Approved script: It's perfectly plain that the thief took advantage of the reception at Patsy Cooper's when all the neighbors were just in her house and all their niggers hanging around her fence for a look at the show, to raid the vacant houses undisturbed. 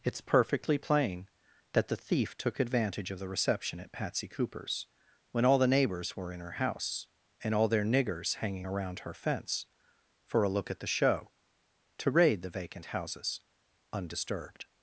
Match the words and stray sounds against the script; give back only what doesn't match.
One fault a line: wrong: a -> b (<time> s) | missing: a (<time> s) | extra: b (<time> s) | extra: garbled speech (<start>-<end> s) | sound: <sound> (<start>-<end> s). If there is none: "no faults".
missing: just (6.3 s)